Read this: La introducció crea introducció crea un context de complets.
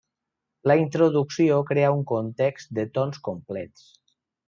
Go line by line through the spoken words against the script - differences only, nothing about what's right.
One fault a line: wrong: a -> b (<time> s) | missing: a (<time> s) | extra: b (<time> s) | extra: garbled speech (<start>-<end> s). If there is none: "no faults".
missing: introducció crea (1.9 s)
extra: tons (3.0 s)